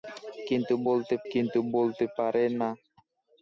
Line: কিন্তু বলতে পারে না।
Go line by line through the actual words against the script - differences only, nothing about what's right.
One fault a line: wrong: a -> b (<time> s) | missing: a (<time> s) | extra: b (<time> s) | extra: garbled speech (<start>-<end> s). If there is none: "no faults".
extra: কিন্তু বলতে (1.3 s)